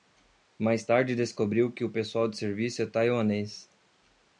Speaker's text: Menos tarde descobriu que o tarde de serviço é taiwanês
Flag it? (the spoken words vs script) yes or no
yes